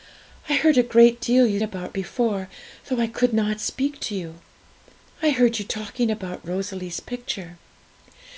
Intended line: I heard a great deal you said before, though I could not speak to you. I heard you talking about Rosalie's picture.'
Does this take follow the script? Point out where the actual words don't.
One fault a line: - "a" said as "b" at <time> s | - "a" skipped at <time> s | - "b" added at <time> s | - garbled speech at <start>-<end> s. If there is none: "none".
- "said" said as "about" at 1.6 s